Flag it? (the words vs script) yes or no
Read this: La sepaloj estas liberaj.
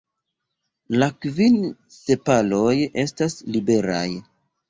yes